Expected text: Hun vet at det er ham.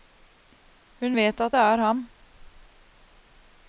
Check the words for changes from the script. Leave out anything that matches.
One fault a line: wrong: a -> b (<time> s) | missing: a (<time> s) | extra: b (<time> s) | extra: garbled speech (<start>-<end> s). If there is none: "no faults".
no faults